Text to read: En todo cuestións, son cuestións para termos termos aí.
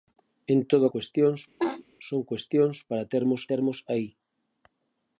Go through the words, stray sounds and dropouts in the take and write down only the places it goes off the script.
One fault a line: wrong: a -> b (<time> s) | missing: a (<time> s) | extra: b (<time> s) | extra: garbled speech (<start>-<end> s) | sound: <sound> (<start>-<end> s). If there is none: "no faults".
sound: laugh (1.6-1.8 s)